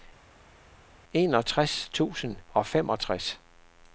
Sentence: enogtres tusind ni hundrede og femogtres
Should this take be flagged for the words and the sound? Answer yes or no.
yes